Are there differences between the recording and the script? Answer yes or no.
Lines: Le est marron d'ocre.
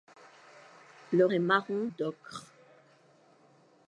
no